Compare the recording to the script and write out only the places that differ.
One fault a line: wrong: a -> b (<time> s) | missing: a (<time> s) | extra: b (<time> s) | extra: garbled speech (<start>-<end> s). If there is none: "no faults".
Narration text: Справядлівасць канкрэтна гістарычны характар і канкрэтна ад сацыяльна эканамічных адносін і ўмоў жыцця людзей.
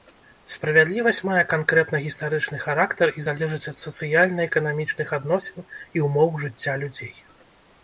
extra: мае (1.3 s)
wrong: канкрэтна -> залежыць (3.3 s)